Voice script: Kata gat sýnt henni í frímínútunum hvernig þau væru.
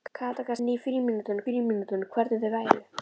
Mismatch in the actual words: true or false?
true